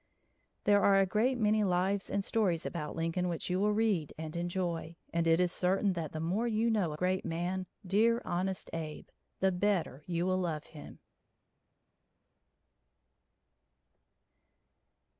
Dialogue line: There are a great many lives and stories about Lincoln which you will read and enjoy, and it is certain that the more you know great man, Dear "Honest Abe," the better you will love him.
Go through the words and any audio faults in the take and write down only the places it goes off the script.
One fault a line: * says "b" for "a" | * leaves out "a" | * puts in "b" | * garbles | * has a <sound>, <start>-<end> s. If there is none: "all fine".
all fine